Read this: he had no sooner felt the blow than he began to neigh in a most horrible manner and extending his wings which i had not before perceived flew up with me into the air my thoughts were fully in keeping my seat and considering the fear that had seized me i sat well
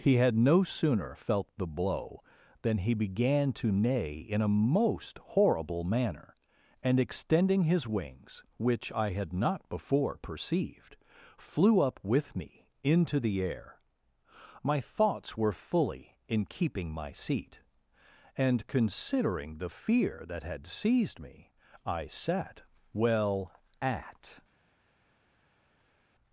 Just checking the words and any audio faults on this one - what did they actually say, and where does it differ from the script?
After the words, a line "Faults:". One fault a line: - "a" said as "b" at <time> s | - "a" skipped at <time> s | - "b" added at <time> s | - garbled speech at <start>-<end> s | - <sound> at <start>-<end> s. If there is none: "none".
he had no sooner felt the blow than he began to neigh in a most horrible manner and extending his wings which i had not before perceived flew up with me into the air my thoughts were fully in keeping my seat and considering the fear that had seized me i sat well at
Faults:
- "at" added at 23.8 s